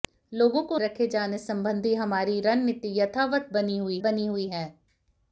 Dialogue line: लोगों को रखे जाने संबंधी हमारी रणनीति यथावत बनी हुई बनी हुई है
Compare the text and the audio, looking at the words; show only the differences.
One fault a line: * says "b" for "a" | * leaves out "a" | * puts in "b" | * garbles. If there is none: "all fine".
all fine